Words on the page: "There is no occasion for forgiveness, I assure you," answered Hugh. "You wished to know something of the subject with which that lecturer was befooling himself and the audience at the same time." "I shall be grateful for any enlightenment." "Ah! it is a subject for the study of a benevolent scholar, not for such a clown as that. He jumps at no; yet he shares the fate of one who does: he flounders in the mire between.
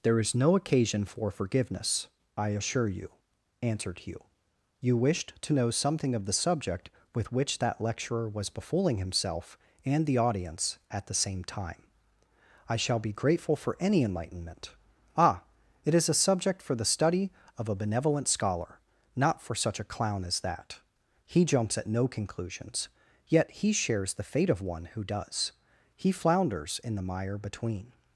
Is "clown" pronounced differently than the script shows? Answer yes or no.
no